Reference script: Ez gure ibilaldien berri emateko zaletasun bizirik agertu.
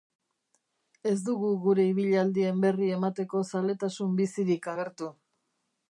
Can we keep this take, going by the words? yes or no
no